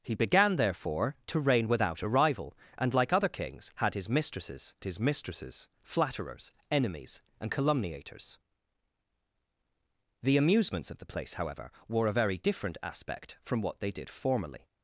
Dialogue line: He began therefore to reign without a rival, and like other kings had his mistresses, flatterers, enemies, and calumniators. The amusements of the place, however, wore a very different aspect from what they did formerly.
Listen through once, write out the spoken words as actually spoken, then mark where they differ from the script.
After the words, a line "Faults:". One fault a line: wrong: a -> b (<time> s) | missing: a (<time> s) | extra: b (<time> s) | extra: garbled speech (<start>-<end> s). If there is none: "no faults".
He began therefore to reign without a rival, and like other kings had his mistresses his mistresses, flatterers, enemies, and calumniators. The amusements of the place, however, wore a very different aspect from what they did formerly.
Faults:
extra: his mistresses (4.8 s)